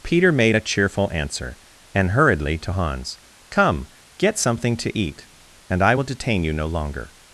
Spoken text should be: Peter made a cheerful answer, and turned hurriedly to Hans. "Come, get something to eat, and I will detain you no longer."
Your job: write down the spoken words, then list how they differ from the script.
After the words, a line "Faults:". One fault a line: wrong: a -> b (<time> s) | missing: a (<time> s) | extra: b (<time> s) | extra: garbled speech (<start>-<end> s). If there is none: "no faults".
Peter made a cheerful answer, and hurriedly to Hans. "Come, get something to eat, and I will detain you no longer."
Faults:
missing: turned (2.1 s)